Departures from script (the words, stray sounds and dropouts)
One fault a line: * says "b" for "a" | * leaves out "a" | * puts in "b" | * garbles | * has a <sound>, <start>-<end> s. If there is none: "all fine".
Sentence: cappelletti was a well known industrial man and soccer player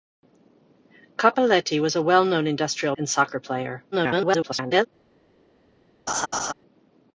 * leaves out "man"
* garbles
* has a laugh, 6.1-6.5 s